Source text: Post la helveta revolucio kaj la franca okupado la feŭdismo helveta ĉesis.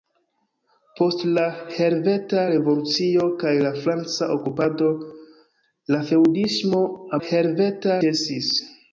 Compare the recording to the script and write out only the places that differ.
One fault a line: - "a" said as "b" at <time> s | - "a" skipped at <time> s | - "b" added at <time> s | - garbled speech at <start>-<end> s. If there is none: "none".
none